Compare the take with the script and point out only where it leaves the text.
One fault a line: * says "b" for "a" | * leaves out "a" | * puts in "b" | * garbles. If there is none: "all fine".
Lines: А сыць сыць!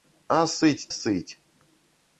all fine